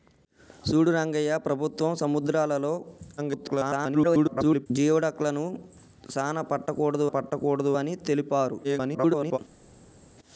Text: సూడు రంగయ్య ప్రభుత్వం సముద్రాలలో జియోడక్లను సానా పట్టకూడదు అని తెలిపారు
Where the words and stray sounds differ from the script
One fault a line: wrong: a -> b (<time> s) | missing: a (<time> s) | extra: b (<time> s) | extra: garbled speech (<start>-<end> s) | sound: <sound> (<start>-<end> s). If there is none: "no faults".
extra: garbled speech (3.2-4.7 s)
extra: పట్టకూడదు (7.0 s)
extra: garbled speech (8.6-9.4 s)